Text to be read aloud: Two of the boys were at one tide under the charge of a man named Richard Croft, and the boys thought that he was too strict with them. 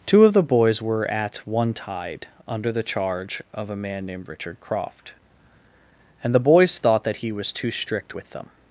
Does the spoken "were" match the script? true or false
true